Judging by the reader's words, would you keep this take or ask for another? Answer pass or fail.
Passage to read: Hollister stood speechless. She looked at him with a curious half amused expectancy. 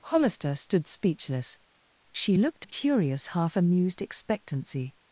fail